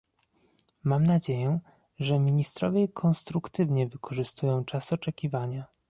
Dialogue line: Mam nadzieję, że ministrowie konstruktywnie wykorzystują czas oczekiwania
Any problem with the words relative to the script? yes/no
no